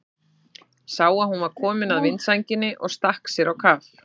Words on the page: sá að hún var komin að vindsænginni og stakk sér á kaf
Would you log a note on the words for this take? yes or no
no